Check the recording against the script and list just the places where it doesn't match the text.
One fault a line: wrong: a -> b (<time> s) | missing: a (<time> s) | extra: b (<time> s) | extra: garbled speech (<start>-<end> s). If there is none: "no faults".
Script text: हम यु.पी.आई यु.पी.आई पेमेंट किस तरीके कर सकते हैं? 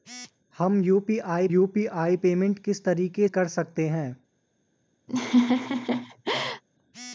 no faults